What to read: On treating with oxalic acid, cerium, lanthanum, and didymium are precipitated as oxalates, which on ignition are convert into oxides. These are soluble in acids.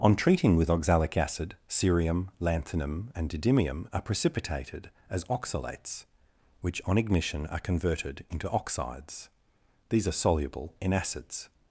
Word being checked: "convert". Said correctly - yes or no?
no